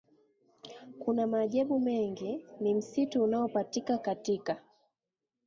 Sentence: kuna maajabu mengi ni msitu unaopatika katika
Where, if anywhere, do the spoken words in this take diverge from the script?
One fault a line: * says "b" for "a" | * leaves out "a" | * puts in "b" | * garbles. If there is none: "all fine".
all fine